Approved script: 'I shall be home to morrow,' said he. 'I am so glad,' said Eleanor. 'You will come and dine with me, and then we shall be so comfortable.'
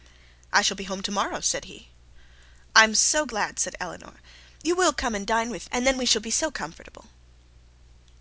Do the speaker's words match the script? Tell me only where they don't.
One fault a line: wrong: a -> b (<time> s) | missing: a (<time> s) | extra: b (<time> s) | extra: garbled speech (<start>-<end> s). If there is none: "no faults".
missing: me (5.7 s)